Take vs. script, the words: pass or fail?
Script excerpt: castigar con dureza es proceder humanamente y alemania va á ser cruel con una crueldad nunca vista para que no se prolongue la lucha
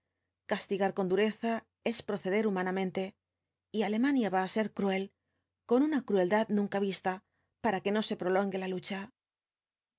pass